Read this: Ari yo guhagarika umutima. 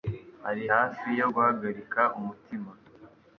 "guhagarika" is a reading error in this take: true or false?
false